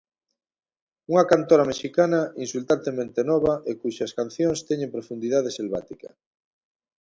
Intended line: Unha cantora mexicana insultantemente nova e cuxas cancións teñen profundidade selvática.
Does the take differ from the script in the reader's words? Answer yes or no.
no